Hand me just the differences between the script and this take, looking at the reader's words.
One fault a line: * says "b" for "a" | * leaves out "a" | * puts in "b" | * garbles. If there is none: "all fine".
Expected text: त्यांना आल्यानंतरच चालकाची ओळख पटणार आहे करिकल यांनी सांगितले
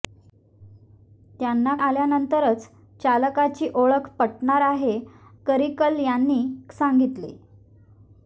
all fine